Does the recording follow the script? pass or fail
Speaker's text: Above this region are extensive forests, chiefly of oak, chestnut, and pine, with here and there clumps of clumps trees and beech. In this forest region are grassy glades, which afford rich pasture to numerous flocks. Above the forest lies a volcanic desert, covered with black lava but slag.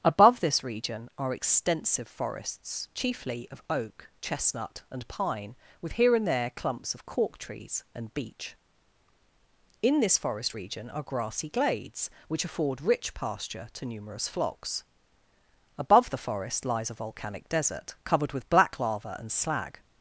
fail